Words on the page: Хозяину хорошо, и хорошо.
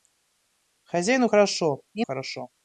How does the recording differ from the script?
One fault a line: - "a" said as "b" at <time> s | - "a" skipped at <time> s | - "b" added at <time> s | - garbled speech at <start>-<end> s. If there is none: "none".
none